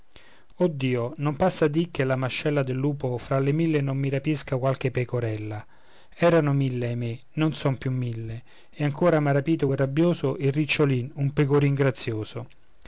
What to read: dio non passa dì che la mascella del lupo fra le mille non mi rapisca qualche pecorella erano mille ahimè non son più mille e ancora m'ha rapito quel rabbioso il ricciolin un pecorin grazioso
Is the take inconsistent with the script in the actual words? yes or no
no